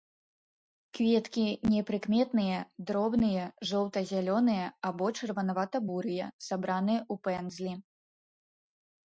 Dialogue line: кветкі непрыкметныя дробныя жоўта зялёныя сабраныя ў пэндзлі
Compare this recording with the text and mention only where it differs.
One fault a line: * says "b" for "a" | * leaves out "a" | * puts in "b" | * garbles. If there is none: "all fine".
* puts in "або чырванавата бурыя"